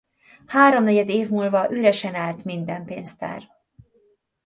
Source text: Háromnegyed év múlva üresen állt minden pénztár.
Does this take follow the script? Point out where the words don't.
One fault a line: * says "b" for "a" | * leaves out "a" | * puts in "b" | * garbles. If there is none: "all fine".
all fine